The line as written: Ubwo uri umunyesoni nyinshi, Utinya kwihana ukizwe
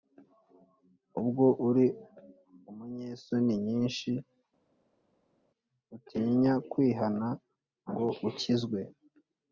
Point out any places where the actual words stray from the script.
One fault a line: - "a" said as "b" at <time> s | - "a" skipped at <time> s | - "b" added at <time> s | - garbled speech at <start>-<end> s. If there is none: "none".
- "ngo" added at 7.9 s